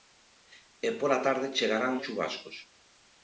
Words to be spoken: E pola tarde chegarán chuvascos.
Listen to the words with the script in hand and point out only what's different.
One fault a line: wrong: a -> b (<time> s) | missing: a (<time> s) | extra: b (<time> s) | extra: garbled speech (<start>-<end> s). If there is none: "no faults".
no faults